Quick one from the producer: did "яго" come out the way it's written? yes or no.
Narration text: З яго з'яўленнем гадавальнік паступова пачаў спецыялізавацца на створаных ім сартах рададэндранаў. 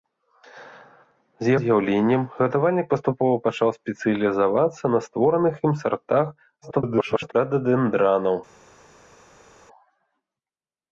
no